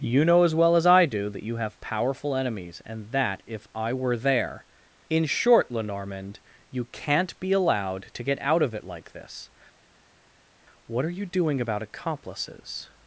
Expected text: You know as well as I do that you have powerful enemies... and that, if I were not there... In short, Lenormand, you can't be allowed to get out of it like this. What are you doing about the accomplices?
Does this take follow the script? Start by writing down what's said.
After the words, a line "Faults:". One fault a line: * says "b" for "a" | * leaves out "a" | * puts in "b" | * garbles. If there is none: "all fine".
You know as well as I do that you have powerful enemies... and that, if I were there... In short, Lenormand, you can't be allowed to get out of it like this. What are you doing about accomplices?
Faults:
* leaves out "not"
* leaves out "the"